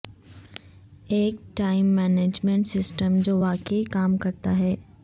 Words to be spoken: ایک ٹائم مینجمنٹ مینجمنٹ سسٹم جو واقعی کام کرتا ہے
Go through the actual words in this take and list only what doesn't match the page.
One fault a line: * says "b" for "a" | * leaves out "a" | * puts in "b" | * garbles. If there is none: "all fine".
* leaves out "مینجمنٹ"